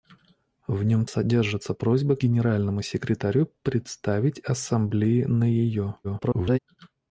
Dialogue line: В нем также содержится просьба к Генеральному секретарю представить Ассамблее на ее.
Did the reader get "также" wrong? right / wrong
wrong